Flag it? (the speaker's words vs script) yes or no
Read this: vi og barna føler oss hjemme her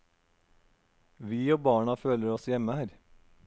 no